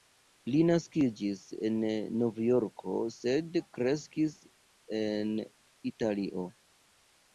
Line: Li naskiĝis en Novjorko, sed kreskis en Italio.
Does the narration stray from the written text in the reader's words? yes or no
no